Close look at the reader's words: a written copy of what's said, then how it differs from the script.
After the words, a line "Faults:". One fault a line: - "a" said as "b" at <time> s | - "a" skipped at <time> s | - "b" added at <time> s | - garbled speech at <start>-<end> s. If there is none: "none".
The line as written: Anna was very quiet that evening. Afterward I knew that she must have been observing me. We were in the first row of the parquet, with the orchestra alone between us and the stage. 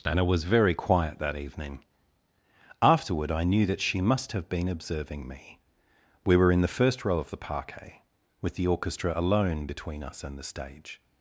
Anna was very quiet that evening. Afterward I knew that she must have been observing me. We were in the first row of the parquet, with the orchestra alone between us and the stage.
Faults:
none